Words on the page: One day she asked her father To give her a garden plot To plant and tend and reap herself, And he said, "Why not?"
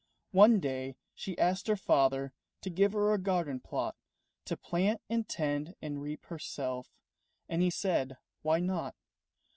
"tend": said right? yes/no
yes